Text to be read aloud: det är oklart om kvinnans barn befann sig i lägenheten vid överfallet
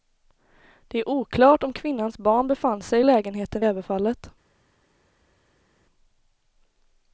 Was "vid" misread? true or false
true